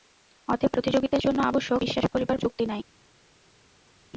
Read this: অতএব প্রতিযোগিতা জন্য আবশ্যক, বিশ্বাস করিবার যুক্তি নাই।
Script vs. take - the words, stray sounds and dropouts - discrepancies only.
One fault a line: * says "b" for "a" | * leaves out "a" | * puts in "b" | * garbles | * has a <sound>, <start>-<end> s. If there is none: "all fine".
all fine